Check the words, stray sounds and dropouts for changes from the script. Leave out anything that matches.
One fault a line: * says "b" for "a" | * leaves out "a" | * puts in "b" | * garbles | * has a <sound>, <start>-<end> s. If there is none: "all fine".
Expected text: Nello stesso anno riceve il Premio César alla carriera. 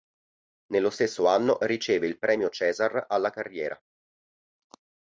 all fine